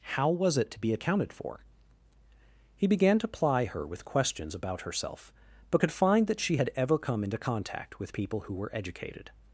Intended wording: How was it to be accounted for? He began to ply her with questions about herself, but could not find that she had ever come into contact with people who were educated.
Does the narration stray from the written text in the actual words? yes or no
yes